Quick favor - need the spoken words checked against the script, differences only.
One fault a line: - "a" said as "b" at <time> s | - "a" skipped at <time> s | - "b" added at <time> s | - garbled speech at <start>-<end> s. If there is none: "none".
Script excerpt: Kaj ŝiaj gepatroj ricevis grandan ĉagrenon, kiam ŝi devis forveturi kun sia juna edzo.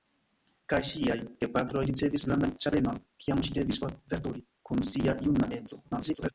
- garbled speech at 5.8-6.3 s